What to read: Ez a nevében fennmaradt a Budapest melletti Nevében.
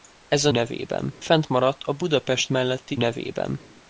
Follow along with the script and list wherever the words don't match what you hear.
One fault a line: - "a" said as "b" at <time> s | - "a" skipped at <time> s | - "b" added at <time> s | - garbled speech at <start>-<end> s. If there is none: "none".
none